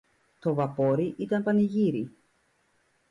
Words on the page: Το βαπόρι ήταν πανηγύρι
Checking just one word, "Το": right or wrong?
right